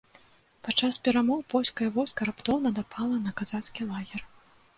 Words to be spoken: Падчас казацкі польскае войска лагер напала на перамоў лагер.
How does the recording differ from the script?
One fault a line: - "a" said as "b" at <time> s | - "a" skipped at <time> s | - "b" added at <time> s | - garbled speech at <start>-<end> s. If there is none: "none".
- "казацкі" said as "перамоў" at 1.1 s
- "лагер" said as "раптоўна" at 2.3 s
- "перамоў" said as "казацкі" at 3.4 s